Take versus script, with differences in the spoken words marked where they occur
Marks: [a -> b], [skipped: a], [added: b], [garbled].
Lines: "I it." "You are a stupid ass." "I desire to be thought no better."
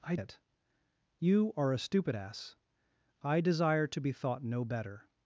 "I it." "You are a stupid ass." "I desire to be thought no better."